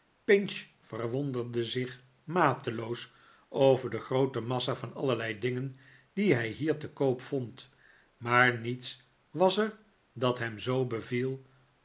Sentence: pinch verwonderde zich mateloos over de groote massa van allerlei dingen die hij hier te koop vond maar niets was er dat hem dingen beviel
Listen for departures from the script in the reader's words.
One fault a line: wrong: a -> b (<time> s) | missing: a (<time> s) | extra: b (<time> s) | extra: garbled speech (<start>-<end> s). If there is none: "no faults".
wrong: dingen -> zoo (10.6 s)